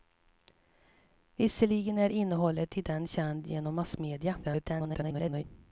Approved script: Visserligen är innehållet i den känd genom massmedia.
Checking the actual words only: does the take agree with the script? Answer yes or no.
no